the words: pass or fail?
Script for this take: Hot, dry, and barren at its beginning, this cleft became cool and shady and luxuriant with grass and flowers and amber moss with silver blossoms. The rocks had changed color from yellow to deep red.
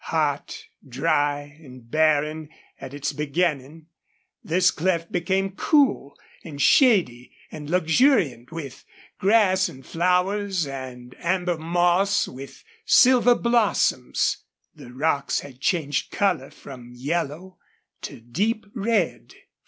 pass